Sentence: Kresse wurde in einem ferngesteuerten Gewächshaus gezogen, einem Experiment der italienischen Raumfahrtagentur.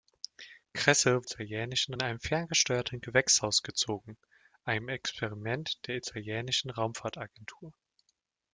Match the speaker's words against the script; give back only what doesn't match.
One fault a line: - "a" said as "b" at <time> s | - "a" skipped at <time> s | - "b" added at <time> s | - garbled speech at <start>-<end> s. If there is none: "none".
- "wurde" said as "italienischen" at 1.2 s